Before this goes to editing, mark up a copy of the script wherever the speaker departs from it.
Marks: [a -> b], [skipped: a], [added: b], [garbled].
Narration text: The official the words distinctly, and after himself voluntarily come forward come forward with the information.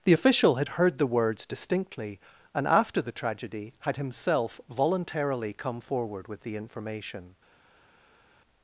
The official [added: had heard] the words distinctly, and after [added: the tragedy had] himself voluntarily come forward [skipped: come forward] with the information.